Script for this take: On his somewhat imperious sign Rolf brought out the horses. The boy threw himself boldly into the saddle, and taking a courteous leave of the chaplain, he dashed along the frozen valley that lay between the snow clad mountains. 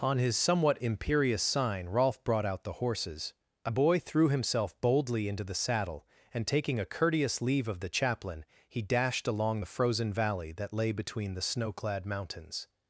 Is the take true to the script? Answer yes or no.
no